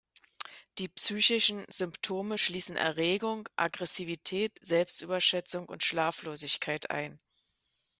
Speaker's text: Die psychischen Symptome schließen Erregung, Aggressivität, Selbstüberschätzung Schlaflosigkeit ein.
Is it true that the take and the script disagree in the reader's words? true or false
true